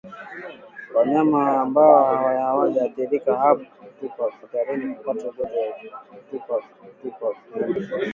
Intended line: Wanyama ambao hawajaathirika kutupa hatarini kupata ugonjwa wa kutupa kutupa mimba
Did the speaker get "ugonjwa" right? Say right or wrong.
right